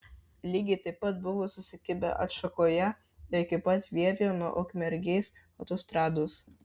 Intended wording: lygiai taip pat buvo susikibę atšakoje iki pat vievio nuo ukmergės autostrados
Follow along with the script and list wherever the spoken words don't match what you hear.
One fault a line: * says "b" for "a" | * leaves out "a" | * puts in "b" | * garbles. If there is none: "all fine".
all fine